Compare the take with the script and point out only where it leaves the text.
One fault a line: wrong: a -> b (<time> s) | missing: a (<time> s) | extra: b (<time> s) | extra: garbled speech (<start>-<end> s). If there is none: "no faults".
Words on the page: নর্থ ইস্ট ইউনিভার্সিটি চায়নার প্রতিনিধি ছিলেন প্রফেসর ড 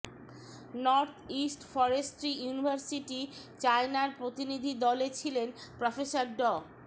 extra: ফরেস্ট্রি (1.7 s)
extra: দলে (4.8 s)